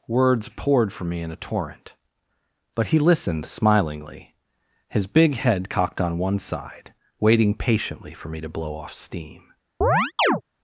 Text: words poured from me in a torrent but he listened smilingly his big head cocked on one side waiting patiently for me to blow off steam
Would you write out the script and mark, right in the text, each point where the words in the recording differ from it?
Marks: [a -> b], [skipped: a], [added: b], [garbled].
words poured from me in a torrent but he listened smilingly his big head cocked on one side waiting patiently for me to blow off steam